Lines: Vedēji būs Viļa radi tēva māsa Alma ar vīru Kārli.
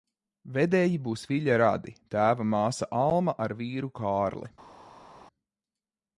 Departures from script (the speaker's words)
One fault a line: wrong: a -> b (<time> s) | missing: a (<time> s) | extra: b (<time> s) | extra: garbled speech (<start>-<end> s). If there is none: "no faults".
no faults